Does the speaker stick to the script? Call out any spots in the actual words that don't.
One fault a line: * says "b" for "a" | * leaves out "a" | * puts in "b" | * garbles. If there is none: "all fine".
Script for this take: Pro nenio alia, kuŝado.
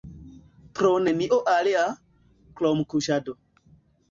* puts in "krom"